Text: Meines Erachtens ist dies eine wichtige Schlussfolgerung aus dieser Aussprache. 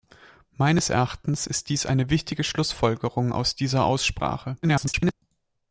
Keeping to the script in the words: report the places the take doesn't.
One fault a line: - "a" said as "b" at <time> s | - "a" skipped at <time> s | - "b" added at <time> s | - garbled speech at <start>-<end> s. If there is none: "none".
- garbled speech at 4.6-5.1 s